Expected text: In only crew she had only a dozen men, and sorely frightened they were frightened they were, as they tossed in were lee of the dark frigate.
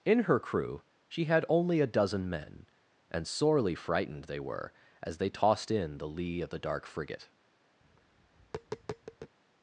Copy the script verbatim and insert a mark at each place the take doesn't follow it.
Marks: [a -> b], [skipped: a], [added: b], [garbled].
In [only -> her] crew she had only a dozen men, and sorely frightened they were [skipped: frightened they were,] as they tossed in [were -> the] lee of the dark frigate.